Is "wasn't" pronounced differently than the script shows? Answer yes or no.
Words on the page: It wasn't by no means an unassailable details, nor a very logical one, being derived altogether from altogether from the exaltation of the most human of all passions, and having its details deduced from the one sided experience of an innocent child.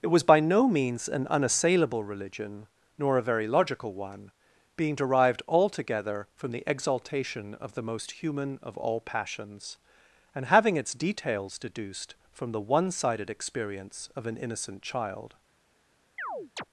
yes